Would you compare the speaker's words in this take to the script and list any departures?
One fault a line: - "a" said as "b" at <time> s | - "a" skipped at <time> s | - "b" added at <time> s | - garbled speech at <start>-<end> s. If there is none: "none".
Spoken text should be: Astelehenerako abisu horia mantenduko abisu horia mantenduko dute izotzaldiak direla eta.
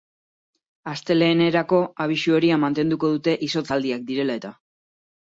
- "abisu horia mantenduko" skipped at 3.1 s